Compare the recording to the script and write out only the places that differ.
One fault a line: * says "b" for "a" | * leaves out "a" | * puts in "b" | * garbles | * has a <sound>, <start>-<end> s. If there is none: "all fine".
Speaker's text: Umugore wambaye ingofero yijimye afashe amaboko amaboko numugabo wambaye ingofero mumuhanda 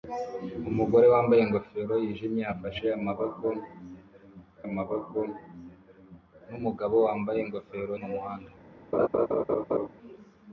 * has a laugh, 8.9-9.9 s